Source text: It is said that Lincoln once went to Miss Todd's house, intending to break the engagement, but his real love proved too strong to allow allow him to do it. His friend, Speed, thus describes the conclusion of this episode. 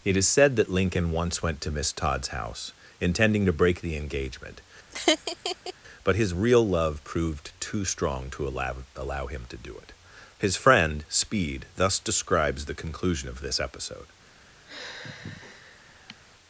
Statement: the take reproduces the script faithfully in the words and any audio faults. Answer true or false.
false